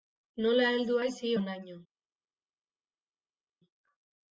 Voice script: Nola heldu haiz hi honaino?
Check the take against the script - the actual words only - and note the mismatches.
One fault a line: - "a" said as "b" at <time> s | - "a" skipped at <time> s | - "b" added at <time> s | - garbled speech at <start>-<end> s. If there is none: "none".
none